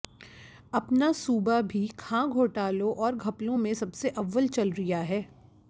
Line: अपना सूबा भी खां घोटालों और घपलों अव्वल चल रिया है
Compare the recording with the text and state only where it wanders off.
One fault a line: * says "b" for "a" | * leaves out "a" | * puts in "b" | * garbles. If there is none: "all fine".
* puts in "में सबसे"